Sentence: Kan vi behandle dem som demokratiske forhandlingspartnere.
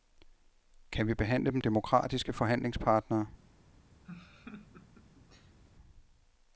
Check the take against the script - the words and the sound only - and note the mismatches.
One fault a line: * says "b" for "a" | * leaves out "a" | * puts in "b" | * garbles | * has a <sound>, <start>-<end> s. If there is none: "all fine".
* leaves out "som"
* has a laugh, 4.0-5.6 s